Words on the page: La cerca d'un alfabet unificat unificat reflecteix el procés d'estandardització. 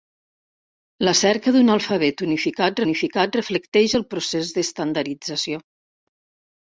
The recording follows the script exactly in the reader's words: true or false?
true